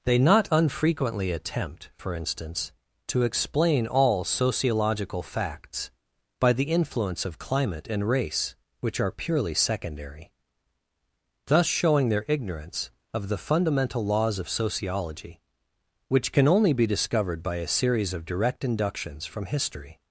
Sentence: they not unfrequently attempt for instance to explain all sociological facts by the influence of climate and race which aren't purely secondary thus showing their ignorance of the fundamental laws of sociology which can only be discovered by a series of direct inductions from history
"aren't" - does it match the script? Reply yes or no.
no